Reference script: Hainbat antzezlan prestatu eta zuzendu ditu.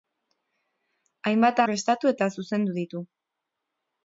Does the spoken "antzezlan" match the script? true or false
false